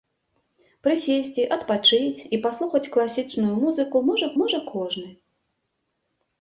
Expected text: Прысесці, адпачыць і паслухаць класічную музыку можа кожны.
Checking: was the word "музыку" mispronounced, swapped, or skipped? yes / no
no